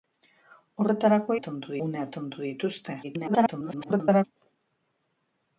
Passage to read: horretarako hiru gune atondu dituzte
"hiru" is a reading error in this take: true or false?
true